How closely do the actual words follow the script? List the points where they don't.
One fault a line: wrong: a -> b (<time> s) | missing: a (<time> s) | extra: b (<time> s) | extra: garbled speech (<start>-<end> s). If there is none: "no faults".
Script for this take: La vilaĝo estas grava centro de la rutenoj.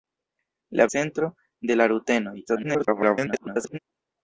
missing: vilaĝo estas grava (0.9 s)
extra: garbled speech (2.5-3.8 s)